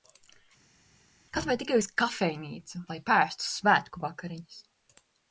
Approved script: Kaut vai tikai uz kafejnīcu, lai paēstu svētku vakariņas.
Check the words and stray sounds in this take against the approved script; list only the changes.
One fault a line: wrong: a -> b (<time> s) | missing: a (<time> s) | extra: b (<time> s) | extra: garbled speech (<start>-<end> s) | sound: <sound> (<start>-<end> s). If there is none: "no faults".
no faults